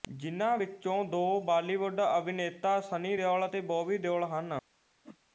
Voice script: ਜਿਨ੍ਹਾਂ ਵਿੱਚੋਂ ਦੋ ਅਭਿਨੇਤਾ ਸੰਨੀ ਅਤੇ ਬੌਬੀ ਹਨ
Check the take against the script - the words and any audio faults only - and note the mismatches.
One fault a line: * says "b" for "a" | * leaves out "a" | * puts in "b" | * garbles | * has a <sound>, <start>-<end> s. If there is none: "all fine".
* puts in "ਬਾਲੀਵੁੱਡ"
* puts in "ਦਿਓਲ"
* puts in "ਦਿਓਲ"
* has a whoosh, 5.0-5.2 s